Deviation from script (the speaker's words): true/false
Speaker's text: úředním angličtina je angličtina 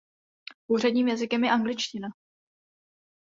true